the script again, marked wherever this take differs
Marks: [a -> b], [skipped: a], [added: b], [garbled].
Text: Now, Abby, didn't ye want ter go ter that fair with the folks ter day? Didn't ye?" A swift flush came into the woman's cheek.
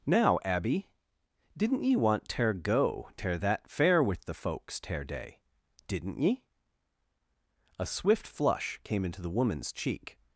Now, Abby, didn't ye want ter go ter that fair with the folks ter day? Didn't ye?" A swift flush came into the woman's cheek.